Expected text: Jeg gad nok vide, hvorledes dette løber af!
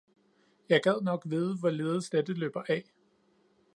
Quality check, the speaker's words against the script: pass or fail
pass